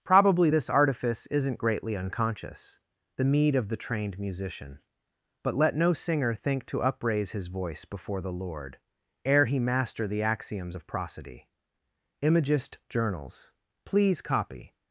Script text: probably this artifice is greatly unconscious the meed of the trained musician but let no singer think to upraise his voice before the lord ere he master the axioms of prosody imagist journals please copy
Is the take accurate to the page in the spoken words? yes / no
no